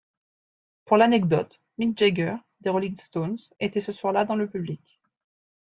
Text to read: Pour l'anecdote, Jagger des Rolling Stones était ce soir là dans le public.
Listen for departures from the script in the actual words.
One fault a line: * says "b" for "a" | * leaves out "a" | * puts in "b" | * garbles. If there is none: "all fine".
* puts in "Mick"